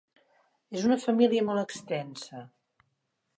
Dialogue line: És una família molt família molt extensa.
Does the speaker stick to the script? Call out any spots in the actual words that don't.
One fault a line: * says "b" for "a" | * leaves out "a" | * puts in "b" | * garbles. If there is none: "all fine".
* leaves out "família molt"